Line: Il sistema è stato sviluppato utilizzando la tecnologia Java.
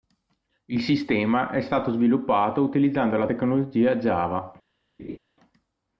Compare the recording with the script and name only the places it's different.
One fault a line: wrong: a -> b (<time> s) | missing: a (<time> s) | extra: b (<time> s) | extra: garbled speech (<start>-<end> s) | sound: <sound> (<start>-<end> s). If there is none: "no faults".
sound: laugh (5.0-5.2 s)